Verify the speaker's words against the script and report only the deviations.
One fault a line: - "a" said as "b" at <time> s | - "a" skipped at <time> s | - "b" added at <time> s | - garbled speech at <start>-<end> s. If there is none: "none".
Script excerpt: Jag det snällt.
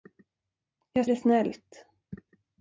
none